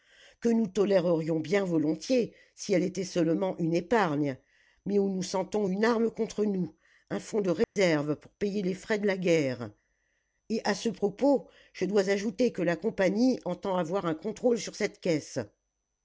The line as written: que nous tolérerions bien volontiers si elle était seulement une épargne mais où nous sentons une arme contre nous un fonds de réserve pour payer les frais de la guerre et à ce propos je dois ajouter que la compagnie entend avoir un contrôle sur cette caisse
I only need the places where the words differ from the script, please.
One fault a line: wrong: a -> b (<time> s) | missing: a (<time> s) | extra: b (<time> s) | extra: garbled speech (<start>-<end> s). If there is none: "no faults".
no faults